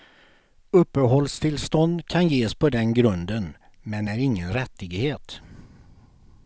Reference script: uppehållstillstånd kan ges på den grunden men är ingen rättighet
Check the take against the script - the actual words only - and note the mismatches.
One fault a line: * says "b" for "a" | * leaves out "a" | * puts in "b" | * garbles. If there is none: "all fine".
all fine